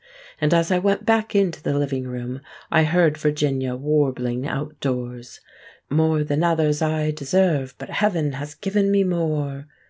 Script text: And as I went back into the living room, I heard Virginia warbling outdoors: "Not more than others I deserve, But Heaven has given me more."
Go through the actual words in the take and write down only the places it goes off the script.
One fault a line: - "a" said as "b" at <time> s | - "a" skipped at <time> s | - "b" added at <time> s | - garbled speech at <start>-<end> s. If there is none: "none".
- "Not" skipped at 5.4 s